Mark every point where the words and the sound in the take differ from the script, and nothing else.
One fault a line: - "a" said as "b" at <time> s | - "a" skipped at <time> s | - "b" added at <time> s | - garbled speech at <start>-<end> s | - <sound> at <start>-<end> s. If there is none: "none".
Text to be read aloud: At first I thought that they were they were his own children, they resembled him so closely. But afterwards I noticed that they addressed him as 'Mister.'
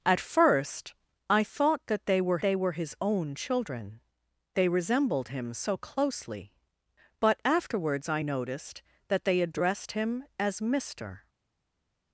none